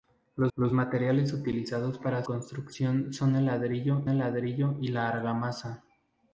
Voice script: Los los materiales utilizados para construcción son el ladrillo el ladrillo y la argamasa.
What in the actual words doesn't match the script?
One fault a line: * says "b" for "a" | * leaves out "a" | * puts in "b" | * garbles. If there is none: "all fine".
all fine